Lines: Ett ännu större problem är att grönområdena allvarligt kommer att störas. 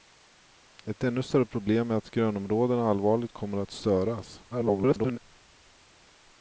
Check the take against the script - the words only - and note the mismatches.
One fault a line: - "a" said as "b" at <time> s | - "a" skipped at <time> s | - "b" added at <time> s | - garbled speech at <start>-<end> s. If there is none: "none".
- garbled speech at 4.5-5.2 s